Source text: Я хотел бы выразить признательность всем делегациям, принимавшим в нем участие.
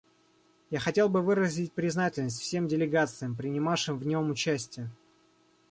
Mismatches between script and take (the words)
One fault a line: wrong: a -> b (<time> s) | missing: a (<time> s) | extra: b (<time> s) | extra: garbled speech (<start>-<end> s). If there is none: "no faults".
no faults